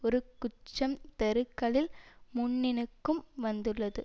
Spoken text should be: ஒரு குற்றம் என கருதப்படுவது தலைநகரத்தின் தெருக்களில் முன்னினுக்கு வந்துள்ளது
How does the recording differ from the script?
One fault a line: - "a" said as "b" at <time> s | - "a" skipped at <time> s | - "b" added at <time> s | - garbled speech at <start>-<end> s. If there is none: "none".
- "என கருதப்படுவது தலைநகரத்தின்" skipped at 0.9 s